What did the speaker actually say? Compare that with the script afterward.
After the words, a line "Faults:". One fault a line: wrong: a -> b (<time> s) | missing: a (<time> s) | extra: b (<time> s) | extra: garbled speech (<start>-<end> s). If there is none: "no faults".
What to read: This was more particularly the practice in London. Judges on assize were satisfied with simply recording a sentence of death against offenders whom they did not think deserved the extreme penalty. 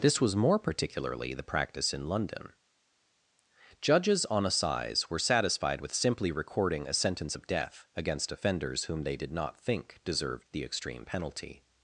This was more particularly the practice in London. Judges on assize were satisfied with simply recording a sentence of death against offenders whom they did not think deserved the extreme penalty.
Faults:
no faults